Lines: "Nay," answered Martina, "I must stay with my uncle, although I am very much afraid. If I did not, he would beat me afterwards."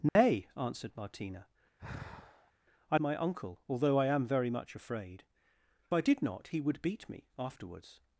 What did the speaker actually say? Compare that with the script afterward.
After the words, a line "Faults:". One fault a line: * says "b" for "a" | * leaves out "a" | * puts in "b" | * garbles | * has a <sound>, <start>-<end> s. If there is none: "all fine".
"Nay," answered Martina, "I my uncle, although I am very much afraid. I did not, he would beat me afterwards."
Faults:
* has a dropout, 0.1-0.2 s
* has a sigh, 1.8-2.5 s
* leaves out "must stay with"
* leaves out "If"